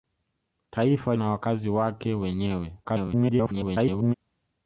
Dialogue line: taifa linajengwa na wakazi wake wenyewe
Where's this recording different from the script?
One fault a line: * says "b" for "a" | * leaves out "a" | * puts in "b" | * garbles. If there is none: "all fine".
* leaves out "linajengwa"
* garbles